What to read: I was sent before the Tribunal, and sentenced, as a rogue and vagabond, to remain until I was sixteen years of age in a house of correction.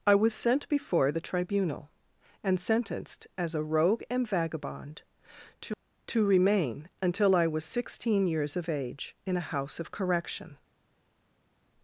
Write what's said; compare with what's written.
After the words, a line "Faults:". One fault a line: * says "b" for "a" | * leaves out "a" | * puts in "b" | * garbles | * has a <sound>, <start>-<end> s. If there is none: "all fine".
I was sent before the Tribunal, and sentenced, as a rogue and vagabond, to to remain until I was sixteen years of age in a house of correction.
Faults:
* puts in "to"